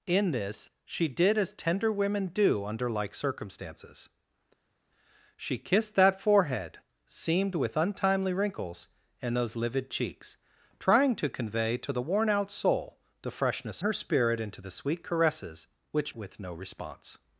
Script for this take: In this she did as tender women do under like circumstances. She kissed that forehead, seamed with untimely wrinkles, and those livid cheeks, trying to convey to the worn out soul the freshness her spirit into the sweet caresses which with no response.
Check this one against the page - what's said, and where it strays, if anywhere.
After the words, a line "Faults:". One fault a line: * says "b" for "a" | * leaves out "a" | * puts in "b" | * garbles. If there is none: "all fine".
In this she did as tender women do under like circumstances. She kissed that forehead, seamed with untimely wrinkles, and those livid cheeks, trying to convey to the worn out soul the freshness her spirit into the sweet caresses which with no response.
Faults:
all fine